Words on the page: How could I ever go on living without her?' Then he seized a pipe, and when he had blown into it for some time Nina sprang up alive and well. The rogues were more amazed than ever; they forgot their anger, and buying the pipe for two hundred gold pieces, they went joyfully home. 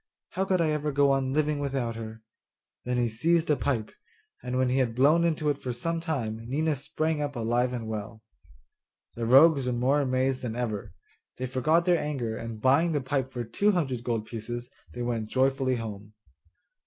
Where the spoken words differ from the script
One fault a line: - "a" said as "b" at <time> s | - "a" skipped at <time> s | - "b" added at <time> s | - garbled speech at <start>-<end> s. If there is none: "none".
none